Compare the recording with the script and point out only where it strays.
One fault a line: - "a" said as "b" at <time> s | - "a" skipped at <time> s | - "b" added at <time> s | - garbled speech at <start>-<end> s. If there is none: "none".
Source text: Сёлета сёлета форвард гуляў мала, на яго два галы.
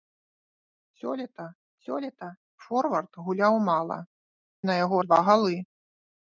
none